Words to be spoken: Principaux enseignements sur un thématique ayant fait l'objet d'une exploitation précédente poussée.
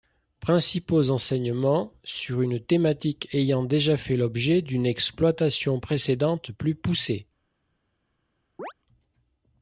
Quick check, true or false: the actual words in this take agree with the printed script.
false